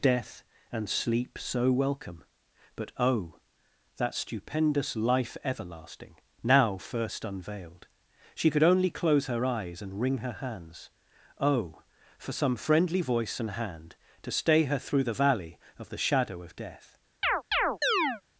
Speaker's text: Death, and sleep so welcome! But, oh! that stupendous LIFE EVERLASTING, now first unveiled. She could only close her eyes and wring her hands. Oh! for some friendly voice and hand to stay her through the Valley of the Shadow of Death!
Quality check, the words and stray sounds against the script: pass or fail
fail